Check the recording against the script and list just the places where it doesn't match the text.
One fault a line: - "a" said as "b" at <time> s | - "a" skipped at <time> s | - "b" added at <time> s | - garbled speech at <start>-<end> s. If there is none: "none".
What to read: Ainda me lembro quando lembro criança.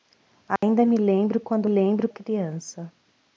none